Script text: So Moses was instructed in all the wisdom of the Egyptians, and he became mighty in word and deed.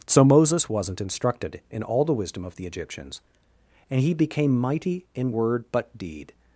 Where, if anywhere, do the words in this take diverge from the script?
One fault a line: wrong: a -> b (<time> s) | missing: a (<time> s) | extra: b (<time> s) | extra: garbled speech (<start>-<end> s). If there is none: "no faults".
wrong: was -> wasn't (0.7 s)
wrong: and -> but (5.7 s)